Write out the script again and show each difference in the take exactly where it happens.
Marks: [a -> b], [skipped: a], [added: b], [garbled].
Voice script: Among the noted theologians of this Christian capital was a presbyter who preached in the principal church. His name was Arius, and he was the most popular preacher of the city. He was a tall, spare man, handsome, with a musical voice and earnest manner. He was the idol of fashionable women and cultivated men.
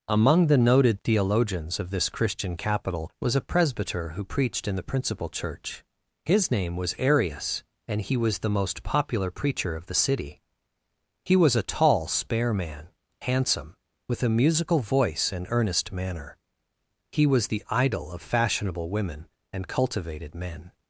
Among the noted theologians of this Christian capital was a presbyter who preached in the principal church. His name was Arius, and he was the most popular preacher of the city. He was a tall, spare man, handsome, with a musical voice and earnest manner. He was the idol of fashionable women and cultivated men.